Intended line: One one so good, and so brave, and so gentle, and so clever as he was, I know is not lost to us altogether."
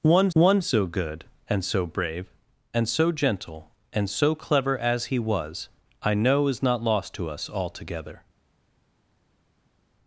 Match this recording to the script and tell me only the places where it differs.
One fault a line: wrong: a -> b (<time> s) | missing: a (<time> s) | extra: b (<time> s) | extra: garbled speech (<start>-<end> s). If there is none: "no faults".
no faults